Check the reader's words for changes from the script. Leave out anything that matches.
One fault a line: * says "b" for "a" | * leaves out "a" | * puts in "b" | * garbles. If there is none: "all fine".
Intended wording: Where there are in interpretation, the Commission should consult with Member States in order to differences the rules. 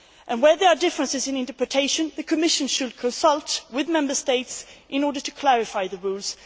* puts in "differences"
* says "clarify" for "differences"